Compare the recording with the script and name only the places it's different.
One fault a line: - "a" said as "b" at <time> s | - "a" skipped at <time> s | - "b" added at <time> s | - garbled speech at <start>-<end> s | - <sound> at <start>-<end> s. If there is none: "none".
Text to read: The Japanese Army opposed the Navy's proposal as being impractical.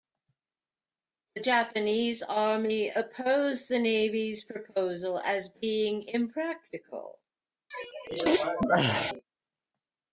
- sneeze at 7.7-9.2 s